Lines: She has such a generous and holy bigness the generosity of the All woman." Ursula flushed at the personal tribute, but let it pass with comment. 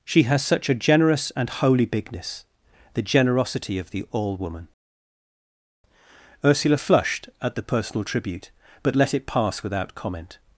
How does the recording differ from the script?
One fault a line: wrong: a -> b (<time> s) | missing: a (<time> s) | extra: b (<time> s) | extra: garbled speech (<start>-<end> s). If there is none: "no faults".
wrong: with -> without (9.6 s)